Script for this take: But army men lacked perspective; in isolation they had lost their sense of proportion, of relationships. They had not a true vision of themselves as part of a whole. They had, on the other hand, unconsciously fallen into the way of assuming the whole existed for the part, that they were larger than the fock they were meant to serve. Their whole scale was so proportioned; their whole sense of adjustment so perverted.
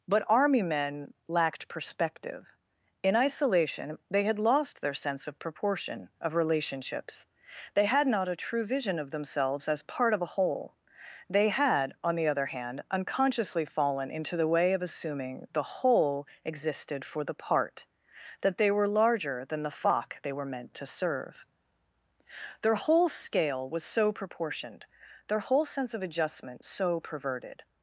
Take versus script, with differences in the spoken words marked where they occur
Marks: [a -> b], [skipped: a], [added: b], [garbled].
But army men lacked perspective; in isolation they had lost their sense of proportion, of relationships. They had not a true vision of themselves as part of a whole. They had, on the other hand, unconsciously fallen into the way of assuming the whole existed for the part, that they were larger than the fock they were meant to serve. Their whole scale was so proportioned; their whole sense of adjustment so perverted.